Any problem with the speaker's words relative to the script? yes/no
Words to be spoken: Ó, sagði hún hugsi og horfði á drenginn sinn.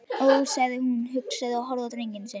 no